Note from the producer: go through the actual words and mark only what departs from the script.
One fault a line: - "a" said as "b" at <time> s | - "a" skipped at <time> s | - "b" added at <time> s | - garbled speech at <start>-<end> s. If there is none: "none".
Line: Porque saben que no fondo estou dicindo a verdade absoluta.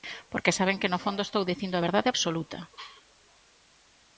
none